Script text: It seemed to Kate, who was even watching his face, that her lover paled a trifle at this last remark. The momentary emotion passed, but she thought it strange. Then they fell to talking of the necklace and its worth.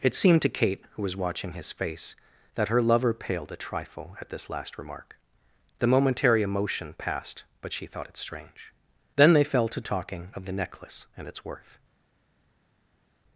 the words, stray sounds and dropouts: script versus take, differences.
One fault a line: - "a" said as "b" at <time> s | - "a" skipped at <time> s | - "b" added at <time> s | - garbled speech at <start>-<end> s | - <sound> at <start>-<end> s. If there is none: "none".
- "even" skipped at 1.1 s